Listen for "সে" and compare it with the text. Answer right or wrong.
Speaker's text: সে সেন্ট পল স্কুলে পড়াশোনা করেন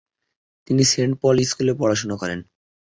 wrong